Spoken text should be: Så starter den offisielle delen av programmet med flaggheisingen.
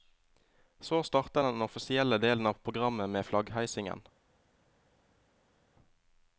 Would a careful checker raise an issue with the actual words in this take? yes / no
no